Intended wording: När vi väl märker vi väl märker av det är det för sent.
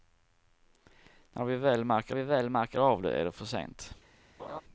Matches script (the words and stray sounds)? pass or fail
fail